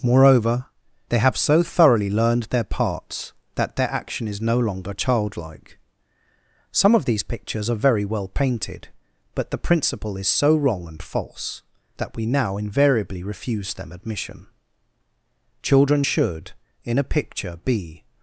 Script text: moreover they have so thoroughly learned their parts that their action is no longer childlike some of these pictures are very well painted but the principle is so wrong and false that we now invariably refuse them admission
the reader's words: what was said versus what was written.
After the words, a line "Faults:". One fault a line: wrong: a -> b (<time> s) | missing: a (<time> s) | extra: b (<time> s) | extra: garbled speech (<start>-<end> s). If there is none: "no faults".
moreover they have so thoroughly learned their parts that their action is no longer childlike some of these pictures are very well painted but the principle is so wrong and false that we now invariably refuse them admission children should in a picture be
Faults:
extra: children should in a picture be (15.6 s)